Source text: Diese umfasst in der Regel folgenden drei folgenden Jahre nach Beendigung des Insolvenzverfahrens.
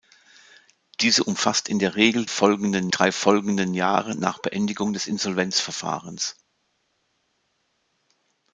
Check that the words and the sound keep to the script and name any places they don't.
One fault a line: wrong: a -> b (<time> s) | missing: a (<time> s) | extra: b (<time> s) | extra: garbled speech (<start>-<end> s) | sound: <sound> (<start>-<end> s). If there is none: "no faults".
no faults